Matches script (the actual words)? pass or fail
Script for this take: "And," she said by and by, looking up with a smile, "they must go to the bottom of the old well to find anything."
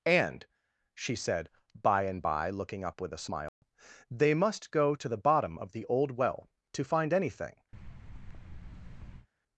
pass